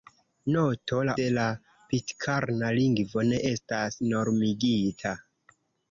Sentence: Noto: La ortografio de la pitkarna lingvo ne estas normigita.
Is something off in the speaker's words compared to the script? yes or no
yes